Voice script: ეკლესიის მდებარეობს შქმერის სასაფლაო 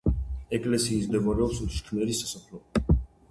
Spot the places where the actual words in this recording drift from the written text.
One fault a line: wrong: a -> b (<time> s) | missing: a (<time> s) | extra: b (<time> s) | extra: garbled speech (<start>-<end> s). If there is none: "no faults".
no faults